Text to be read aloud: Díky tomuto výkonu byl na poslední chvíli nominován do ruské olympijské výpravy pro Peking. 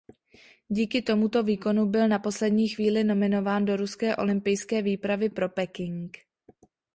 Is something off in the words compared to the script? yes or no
no